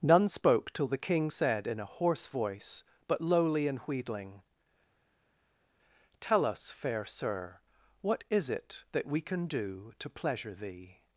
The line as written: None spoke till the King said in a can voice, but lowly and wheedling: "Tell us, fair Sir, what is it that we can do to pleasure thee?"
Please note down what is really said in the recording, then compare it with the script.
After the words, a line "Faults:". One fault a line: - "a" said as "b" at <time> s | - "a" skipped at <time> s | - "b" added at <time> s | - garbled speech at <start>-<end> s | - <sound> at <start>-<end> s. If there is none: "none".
None spoke till the King said in a hoarse voice, but lowly and wheedling: "Tell us, fair Sir, what is it that we can do to pleasure thee?"
Faults:
- "can" said as "hoarse" at 1.9 s